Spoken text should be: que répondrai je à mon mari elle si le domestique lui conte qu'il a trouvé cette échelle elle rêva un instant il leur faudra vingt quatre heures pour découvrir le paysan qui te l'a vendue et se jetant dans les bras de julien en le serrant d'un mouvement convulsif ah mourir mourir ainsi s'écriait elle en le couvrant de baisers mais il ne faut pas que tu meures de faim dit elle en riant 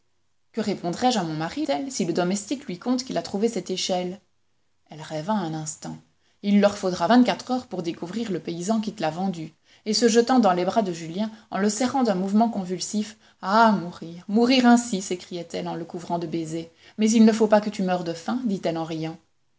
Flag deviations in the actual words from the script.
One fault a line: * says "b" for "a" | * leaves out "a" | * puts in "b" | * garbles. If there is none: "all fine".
all fine